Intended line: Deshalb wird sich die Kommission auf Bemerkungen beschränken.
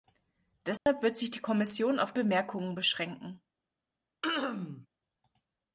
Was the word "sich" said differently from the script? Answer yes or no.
no